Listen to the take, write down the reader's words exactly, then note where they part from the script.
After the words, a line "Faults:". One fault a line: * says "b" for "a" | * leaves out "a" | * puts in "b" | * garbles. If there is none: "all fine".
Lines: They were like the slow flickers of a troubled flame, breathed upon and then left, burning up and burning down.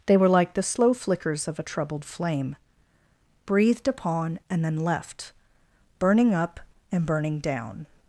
They were like the slow flickers of a troubled flame, breathed upon and then left, burning up and burning down.
Faults:
all fine